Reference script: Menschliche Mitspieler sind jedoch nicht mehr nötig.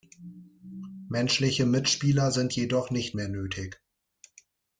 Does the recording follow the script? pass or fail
pass